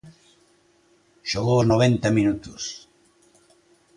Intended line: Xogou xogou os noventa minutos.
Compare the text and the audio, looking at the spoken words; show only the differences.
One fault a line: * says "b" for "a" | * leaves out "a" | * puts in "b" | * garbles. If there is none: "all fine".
* leaves out "xogou"